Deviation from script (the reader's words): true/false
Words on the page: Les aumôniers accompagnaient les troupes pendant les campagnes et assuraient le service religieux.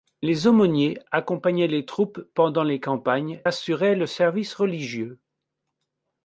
true